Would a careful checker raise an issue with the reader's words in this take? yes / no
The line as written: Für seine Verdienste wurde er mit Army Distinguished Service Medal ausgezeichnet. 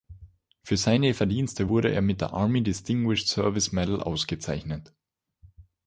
yes